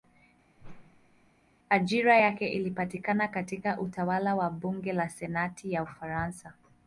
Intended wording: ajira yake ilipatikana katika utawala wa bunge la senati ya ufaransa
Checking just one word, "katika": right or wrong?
right